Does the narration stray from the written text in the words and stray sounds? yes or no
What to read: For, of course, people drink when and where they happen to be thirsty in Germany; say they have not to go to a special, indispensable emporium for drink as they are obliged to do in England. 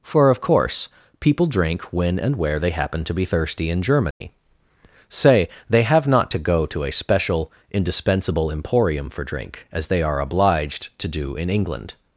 yes